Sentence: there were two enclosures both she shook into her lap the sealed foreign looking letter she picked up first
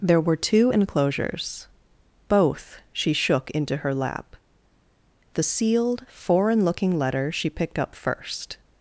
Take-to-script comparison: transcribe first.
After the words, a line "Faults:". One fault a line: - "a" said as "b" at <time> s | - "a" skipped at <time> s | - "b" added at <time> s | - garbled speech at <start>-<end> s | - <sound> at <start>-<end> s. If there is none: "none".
there were two enclosures both she shook into her lap the sealed foreign looking letter she picked up first
Faults:
none